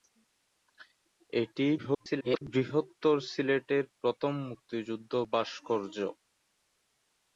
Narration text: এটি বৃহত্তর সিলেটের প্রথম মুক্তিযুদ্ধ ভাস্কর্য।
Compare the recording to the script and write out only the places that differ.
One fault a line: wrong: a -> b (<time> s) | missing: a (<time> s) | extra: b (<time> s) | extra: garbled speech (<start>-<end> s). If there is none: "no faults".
extra: garbled speech (1.8-2.4 s)